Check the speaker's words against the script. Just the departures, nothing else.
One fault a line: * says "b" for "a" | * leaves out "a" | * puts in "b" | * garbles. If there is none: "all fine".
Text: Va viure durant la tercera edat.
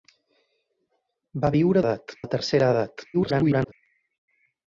* says "edat" for "durant"
* garbles